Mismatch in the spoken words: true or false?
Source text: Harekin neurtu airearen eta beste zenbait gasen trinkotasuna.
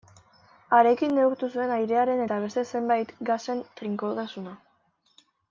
true